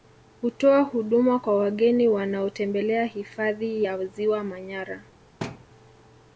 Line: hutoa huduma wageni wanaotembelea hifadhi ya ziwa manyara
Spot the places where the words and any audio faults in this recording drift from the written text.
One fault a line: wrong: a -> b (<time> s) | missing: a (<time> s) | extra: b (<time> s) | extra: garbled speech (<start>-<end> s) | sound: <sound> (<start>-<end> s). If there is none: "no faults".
extra: kwa (1.4 s)
sound: thud (5.4-5.7 s)